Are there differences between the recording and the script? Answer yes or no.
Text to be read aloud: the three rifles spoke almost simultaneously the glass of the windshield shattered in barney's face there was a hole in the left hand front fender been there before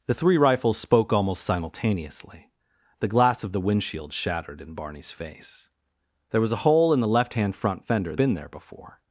no